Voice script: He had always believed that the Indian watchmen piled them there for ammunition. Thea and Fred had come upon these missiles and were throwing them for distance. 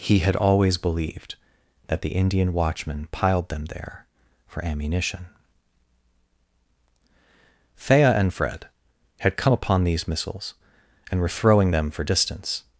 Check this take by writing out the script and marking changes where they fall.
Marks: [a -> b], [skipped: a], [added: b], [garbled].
He had always believed that the Indian watchmen piled them there for ammunition. Thea and Fred had come upon these missiles and were throwing them for distance.